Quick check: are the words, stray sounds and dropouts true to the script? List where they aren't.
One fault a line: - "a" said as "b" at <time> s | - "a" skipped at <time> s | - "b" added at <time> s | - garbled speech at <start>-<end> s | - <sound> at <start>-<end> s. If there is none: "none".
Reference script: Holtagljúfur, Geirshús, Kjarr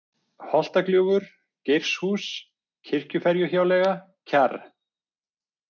- "Kirkjuferjuhjáleiga" added at 2.9 s